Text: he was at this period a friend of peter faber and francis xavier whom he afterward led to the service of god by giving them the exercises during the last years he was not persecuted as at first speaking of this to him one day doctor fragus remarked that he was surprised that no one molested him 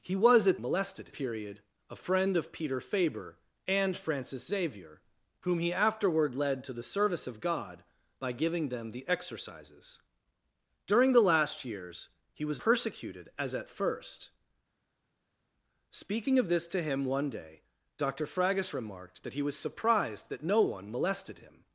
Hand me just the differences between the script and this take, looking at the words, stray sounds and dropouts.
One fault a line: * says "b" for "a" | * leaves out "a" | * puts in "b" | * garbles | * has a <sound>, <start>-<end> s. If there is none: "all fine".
* says "molested" for "this"
* leaves out "not"